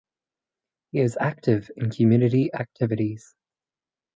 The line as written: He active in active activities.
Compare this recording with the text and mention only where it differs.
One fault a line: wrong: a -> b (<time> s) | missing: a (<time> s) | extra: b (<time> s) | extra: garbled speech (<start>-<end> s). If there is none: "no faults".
extra: is (1.0 s)
wrong: active -> community (1.9 s)